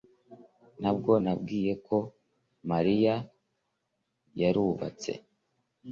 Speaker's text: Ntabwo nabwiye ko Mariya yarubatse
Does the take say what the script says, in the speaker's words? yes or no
yes